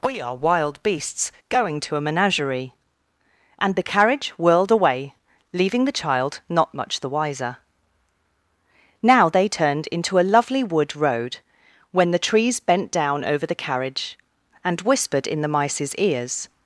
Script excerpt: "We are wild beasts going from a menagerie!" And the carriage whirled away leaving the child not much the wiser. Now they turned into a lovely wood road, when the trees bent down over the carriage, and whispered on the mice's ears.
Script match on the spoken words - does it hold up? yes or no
no